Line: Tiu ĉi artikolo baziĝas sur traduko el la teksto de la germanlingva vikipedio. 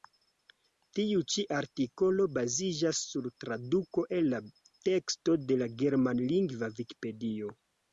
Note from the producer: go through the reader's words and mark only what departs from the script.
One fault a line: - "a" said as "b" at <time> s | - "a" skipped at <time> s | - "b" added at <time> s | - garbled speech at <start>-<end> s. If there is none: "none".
none